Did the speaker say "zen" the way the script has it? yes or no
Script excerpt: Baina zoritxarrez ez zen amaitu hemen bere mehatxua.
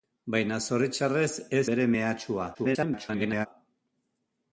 no